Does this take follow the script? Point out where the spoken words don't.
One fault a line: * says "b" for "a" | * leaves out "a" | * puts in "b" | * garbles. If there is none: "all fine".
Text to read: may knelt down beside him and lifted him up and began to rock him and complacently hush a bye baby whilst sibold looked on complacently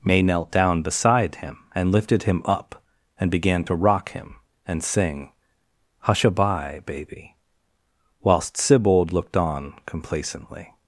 * says "sing" for "complacently"